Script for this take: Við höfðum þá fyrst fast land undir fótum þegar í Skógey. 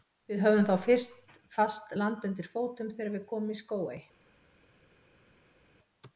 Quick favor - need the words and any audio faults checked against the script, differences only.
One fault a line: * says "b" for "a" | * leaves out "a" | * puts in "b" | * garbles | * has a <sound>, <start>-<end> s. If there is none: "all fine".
* puts in "við komum"